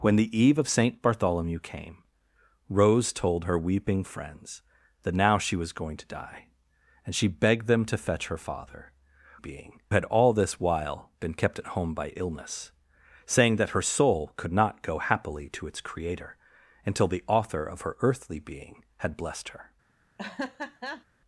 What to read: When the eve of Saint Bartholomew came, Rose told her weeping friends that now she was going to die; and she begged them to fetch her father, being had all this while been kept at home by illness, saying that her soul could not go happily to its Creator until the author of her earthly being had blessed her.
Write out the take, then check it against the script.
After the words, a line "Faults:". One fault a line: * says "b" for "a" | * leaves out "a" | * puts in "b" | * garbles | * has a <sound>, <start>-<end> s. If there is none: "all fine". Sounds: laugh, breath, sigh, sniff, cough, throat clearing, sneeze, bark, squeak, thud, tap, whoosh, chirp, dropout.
When the eve of Saint Bartholomew came, Rose told her weeping friends that now she was going to die; and she begged them to fetch her father, being had all this while been kept at home by illness, saying that her soul could not go happily to its Creator until the author of her earthly being had blessed her.
Faults:
* has a laugh, 20.2-21.0 s